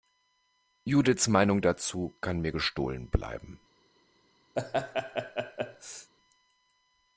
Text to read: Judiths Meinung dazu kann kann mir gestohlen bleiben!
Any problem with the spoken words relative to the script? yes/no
yes